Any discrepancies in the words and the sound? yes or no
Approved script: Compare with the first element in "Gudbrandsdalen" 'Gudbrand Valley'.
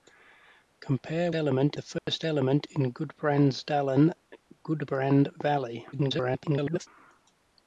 yes